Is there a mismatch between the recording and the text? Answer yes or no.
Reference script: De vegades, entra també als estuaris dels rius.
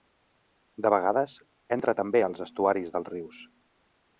no